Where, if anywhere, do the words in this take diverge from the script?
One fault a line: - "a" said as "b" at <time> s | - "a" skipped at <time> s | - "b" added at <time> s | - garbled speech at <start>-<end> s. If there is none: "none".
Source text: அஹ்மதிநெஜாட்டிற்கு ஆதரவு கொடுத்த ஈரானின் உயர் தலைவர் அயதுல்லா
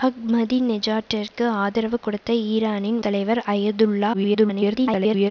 - "உயர்" skipped at 3.0 s
- garbled speech at 4.1-5.3 s